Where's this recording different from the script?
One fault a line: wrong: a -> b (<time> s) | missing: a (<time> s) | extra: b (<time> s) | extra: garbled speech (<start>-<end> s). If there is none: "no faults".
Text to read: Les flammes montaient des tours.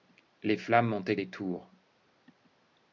no faults